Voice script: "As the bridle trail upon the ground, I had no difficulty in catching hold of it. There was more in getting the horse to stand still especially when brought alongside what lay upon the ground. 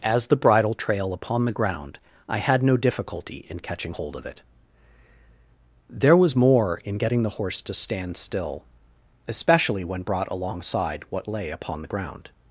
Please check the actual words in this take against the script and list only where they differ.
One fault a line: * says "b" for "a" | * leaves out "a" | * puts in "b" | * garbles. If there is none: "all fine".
all fine